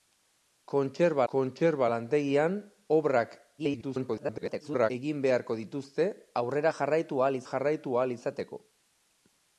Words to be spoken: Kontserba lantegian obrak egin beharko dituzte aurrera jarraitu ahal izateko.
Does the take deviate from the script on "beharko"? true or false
false